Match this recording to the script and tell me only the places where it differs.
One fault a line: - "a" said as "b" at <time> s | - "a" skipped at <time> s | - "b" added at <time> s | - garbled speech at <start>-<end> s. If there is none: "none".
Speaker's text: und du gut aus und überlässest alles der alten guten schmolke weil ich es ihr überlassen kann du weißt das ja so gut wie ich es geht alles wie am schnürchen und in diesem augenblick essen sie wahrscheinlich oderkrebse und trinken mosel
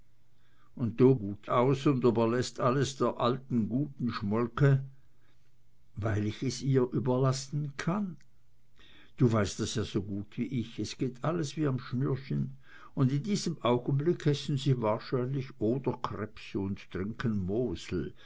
none